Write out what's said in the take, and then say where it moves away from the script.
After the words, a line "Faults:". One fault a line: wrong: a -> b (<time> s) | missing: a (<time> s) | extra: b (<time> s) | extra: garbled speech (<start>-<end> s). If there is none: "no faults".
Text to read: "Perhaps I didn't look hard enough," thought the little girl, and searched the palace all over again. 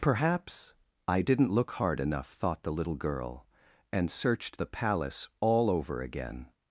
"Perhaps I didn't look hard enough," thought the little girl, and searched the palace all over again.
Faults:
no faults